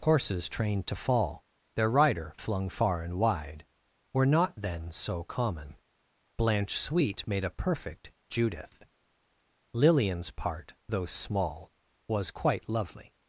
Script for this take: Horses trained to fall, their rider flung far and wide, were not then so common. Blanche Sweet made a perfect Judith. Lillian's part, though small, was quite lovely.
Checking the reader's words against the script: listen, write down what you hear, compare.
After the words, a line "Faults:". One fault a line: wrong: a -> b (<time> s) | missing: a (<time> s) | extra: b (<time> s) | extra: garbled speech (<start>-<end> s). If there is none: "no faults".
Horses trained to fall, their rider flung far and wide, were not then so common. Blanche Sweet made a perfect Judith. Lillian's part, though small, was quite lovely.
Faults:
no faults